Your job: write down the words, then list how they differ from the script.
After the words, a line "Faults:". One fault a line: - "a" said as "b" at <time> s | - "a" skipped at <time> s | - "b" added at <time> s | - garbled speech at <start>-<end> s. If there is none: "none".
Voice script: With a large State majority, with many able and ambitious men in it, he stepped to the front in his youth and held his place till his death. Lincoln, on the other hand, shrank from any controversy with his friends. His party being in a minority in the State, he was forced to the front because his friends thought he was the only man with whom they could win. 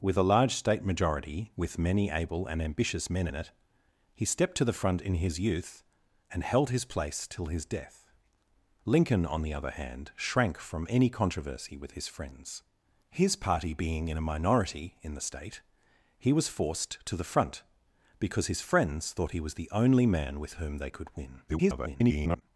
With a large State majority, with many able and ambitious men in it, he stepped to the front in his youth and held his place till his death. Lincoln, on the other hand, shrank from any controversy with his friends. His party being in a minority in the State, he was forced to the front because his friends thought he was the only man with whom they could win. [garbled]
Faults:
- garbled speech at 21.5-22.4 s